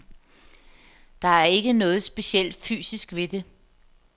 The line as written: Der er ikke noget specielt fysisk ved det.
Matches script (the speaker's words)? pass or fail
pass